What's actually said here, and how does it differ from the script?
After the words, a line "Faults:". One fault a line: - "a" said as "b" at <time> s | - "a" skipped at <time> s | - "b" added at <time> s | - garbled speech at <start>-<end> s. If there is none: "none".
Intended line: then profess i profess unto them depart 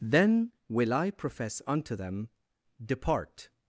then will i profess unto them depart
Faults:
- "profess" said as "will" at 0.7 s